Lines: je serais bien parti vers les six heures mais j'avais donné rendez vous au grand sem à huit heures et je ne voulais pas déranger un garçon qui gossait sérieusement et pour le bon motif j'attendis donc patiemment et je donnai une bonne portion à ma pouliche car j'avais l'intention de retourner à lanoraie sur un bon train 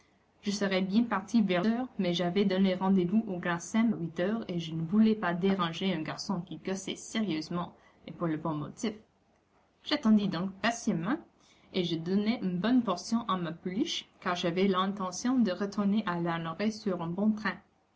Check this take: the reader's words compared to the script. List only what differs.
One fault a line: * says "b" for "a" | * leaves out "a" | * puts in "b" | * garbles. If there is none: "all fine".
* leaves out "les six"
* leaves out "à"